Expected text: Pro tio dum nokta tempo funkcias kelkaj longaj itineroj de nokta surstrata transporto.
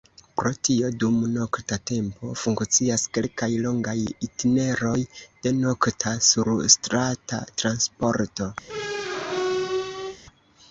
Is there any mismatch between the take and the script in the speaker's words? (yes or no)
no